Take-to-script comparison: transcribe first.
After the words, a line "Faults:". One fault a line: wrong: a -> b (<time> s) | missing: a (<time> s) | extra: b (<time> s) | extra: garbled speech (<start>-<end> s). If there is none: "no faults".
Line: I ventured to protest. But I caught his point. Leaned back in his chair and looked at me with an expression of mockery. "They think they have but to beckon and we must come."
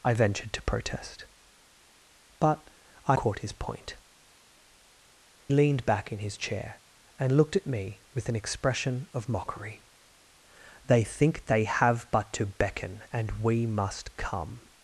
I ventured to protest. But I caught his point. Leaned back in his chair and looked at me with an expression of mockery. "They think they have but to beckon and we must come."
Faults:
no faults